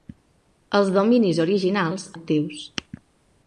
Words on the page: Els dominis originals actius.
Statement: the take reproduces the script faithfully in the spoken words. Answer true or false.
true